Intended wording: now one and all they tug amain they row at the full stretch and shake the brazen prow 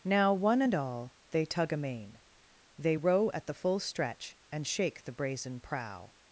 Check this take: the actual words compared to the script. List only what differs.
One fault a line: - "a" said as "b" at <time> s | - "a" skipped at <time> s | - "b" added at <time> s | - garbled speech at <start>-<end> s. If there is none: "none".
none